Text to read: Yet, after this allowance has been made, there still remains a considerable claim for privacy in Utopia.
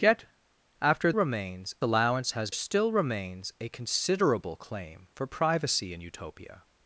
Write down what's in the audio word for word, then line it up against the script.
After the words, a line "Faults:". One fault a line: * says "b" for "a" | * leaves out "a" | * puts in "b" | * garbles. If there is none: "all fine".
Yet, after remains allowance has still remains a considerable claim for privacy in Utopia.
Faults:
* says "remains" for "this"
* leaves out "been made there"